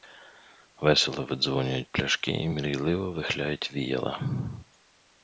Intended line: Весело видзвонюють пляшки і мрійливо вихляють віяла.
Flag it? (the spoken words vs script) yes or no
no